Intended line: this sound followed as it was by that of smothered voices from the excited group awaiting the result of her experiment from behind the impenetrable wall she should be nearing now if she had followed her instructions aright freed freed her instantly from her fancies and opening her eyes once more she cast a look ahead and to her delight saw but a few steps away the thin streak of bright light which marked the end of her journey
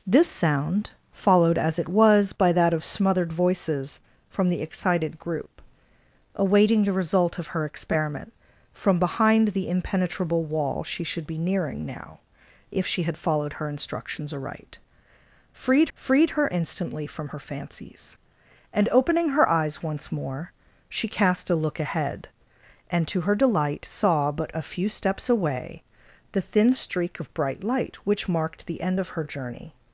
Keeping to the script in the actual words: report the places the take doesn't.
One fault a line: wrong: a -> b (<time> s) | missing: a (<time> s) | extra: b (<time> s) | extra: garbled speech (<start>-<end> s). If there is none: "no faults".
no faults